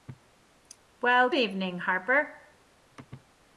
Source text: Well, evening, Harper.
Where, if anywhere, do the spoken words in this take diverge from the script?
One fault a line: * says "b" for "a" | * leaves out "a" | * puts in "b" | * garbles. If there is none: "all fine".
all fine